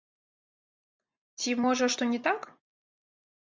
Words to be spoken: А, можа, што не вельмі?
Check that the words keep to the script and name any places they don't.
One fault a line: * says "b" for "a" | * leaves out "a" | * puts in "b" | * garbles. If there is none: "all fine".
* says "Ці" for "А"
* says "так" for "вельмі"